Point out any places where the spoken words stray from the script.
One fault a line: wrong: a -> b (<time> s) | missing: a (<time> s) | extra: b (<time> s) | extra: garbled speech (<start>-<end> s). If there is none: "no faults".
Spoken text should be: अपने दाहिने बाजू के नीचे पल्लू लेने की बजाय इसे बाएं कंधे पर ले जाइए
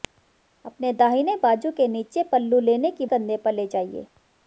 missing: बजाय इसे बाएं (3.0 s)